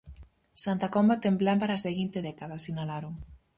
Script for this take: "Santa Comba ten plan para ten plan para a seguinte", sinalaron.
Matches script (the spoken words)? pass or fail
fail